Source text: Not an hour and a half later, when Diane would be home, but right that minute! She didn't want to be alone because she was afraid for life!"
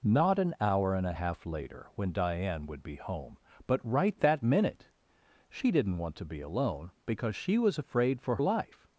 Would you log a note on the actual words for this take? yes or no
no